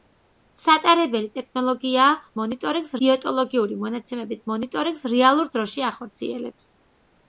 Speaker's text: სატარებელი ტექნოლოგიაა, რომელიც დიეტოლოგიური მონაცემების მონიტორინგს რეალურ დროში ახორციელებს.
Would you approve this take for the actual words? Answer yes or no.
no